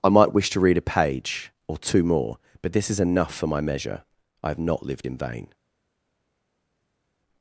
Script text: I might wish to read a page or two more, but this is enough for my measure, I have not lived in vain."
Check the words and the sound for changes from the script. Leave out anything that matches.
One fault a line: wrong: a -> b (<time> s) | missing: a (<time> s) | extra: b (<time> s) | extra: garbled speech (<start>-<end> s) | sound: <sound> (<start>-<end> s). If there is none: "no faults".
no faults